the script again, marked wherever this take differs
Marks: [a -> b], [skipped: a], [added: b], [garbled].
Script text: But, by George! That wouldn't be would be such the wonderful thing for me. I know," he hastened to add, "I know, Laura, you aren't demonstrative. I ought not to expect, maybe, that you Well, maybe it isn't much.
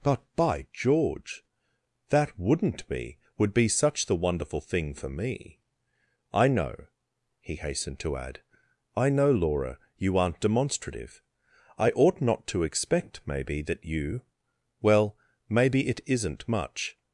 But, by George! That wouldn't be would be such the wonderful thing for me. I know," he hastened to add, "I know, Laura, you aren't demonstrative. I ought not to expect, maybe, that you Well, maybe it isn't much.